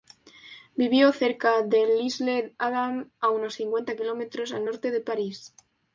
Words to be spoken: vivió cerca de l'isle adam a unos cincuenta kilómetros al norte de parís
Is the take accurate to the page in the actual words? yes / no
yes